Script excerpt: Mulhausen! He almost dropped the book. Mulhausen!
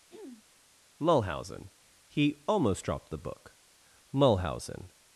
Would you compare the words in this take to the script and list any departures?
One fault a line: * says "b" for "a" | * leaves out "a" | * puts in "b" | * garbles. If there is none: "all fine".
all fine